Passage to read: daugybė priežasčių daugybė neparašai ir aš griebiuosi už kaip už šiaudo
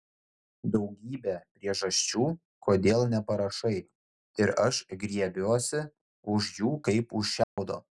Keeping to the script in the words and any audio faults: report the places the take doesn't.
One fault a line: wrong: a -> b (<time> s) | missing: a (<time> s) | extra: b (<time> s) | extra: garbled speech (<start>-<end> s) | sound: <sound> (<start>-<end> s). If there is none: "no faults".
wrong: daugybė -> kodėl (2.7 s)
extra: jų (6.6 s)
sound: dropout (7.4-7.6 s)